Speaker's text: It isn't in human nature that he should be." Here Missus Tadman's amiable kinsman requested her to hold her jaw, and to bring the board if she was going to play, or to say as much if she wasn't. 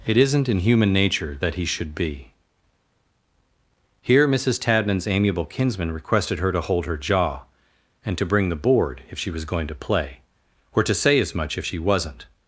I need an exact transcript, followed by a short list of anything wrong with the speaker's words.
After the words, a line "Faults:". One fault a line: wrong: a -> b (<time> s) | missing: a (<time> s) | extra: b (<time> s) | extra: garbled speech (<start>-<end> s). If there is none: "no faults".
It isn't in human nature that he should be." Here Missus Tadman's amiable kinsman requested her to hold her jaw, and to bring the board if she was going to play, or to say as much if she wasn't.
Faults:
no faults